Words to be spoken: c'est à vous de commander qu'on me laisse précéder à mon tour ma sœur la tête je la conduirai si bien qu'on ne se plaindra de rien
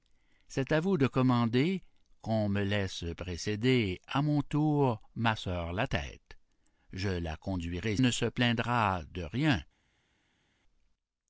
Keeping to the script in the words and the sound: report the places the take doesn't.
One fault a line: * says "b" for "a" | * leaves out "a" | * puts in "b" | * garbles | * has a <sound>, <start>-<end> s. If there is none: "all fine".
* leaves out "si bien qu'on"